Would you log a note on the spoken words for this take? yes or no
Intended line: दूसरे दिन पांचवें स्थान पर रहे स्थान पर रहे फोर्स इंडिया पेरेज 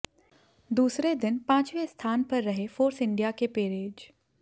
yes